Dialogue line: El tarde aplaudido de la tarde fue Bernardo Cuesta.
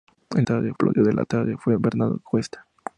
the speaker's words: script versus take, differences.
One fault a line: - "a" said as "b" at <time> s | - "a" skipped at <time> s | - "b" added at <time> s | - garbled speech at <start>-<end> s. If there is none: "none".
none